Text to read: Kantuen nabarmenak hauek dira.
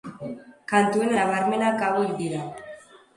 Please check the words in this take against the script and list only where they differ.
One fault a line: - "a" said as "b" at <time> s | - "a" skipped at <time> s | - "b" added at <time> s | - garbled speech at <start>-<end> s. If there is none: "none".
none